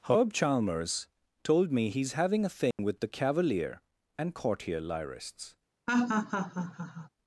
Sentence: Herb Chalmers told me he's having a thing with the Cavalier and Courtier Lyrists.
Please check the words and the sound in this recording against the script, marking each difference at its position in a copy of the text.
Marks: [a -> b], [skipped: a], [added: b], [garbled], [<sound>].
Herb Chalmers told me he's having a thing [dropout] with the Cavalier and Courtier Lyrists. [laugh]